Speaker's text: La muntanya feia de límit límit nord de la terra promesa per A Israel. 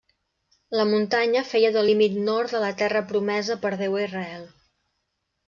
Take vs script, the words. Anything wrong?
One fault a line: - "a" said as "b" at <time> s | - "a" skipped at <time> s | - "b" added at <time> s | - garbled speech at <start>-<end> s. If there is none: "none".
- "límit" skipped at 2.1 s
- "Déu" added at 3.8 s